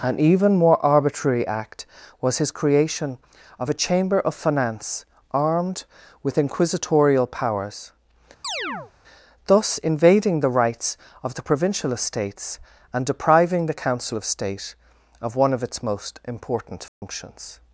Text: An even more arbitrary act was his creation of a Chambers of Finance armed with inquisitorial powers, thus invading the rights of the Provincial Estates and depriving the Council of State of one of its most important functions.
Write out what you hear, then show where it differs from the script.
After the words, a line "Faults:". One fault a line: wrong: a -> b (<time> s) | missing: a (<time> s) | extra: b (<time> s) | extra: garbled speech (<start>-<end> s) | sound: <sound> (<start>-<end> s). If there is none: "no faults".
An even more arbitrary act was his creation of a Chamber of Finance armed with inquisitorial powers, thus invading the rights of the Provincial Estates and depriving the Council of State of one of its most important functions.
Faults:
wrong: Chambers -> Chamber (3.7 s)
sound: chirp (8.4-8.9 s)
sound: dropout (16.9-17.0 s)